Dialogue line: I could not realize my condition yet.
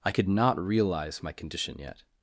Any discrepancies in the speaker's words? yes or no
no